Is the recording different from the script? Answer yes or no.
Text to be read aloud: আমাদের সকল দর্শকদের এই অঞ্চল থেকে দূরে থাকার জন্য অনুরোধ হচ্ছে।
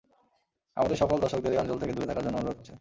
no